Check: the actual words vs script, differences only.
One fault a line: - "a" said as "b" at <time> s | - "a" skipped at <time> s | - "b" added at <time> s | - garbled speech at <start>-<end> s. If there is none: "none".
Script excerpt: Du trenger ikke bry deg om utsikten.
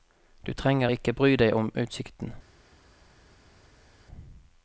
none